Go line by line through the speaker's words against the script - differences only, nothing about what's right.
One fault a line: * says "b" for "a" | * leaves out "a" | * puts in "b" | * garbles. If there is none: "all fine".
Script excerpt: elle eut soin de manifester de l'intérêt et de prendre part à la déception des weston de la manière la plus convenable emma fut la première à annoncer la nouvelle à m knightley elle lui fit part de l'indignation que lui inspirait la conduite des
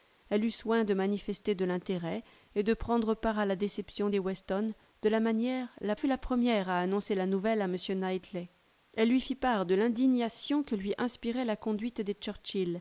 * leaves out "plus convenable emma"